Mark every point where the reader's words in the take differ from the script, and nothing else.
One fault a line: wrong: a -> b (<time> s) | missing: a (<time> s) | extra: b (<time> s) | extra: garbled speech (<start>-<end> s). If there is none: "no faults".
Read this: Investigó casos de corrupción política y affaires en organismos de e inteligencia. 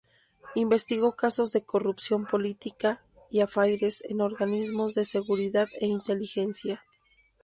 extra: seguridad (5.0 s)